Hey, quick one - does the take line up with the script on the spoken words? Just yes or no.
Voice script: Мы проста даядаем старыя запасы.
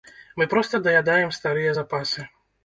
yes